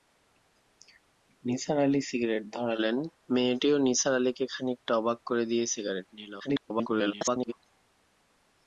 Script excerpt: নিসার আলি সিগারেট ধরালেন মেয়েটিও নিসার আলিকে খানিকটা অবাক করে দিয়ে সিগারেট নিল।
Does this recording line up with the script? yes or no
no